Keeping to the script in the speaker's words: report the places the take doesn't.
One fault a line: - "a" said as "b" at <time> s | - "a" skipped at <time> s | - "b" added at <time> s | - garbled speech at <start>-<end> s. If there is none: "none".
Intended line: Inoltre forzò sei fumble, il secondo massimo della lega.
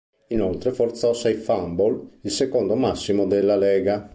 none